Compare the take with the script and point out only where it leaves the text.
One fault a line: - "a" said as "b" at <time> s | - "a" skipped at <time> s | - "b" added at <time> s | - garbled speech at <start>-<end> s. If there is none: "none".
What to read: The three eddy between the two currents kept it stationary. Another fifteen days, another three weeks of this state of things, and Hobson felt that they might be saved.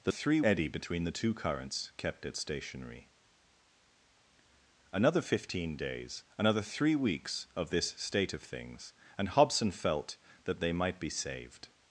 none